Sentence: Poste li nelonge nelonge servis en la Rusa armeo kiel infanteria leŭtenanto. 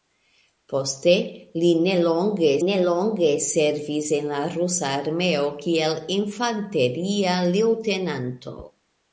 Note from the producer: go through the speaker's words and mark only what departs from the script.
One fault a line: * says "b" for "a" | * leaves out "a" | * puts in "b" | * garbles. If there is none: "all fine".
all fine